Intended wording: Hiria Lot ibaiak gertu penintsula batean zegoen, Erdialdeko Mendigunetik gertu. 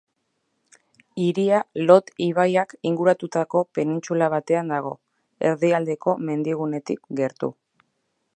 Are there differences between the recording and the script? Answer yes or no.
yes